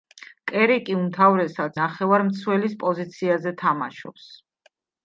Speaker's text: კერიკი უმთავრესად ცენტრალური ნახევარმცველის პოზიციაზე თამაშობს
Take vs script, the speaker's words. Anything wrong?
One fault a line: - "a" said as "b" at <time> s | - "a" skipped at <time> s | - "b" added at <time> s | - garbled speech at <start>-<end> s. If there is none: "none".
- "ცენტრალური" skipped at 1.8 s